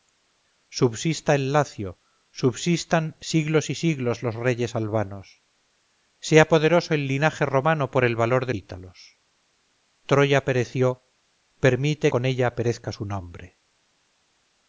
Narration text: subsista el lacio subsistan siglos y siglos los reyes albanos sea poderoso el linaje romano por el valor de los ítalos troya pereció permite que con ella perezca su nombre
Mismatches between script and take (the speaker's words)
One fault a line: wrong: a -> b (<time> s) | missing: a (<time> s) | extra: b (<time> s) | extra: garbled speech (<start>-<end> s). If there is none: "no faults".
missing: los (8.6 s)
missing: que (12.1 s)